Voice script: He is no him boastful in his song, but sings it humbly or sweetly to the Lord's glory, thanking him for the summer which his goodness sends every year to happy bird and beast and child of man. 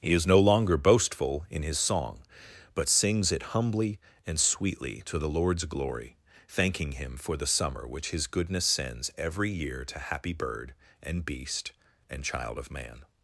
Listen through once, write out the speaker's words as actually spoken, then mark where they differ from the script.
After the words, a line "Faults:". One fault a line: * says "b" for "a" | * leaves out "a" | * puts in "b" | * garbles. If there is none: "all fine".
He is no longer boastful in his song, but sings it humbly and sweetly to the Lord's glory, thanking him for the summer which his goodness sends every year to happy bird and beast and child of man.
Faults:
* says "longer" for "him"
* says "and" for "or"